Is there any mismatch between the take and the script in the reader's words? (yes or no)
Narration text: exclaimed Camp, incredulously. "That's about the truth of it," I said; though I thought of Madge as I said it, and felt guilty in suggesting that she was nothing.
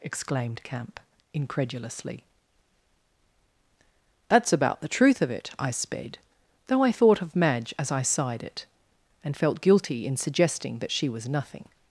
yes